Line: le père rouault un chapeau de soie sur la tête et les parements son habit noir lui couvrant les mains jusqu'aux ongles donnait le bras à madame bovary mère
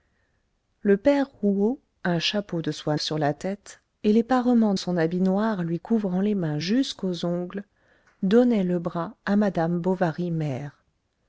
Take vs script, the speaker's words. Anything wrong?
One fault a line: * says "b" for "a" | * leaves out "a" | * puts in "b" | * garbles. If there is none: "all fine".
all fine